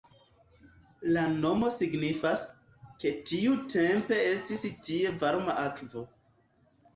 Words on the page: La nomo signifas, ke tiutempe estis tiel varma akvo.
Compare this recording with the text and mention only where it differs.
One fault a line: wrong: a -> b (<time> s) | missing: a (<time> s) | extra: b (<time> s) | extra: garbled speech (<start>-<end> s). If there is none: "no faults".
wrong: tiel -> tie (4.9 s)